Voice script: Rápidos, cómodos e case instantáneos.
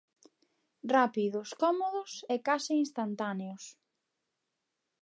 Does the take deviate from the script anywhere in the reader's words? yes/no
no